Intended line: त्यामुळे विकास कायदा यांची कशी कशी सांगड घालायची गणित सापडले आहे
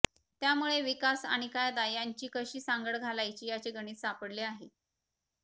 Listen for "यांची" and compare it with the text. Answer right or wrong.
right